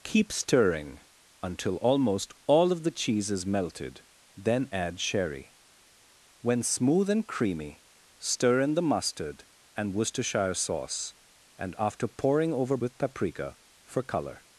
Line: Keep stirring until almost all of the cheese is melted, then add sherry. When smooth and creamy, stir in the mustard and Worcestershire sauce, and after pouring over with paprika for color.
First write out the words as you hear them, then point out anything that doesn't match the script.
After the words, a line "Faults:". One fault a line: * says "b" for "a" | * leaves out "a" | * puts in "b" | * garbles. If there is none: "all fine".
Keep stirring until almost all of the cheese is melted, then add sherry. When smooth and creamy, stir in the mustard and Worcestershire sauce, and after pouring over with paprika for color.
Faults:
all fine